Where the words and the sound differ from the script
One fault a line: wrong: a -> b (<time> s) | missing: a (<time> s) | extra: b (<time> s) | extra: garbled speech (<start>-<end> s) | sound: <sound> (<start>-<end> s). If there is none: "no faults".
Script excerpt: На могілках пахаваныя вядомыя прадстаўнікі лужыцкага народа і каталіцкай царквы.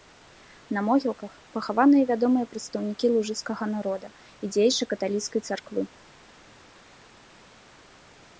extra: дзеячы (4.6 s)